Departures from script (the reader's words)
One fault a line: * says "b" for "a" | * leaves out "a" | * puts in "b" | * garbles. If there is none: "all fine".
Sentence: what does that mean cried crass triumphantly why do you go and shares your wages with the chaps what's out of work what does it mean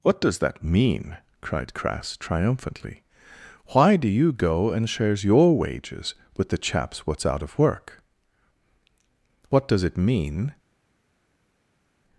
all fine